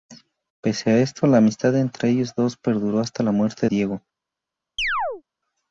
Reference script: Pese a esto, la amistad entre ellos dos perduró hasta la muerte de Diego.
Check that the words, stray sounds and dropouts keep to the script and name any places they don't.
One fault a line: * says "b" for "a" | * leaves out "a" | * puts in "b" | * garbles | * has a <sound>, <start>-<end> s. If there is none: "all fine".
* leaves out "de"
* has a chirp, 4.8-5.2 s